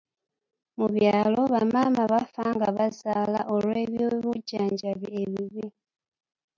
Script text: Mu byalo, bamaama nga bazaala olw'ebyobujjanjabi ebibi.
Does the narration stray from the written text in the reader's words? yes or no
yes